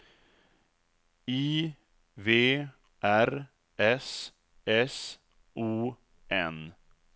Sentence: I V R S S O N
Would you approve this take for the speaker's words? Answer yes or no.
yes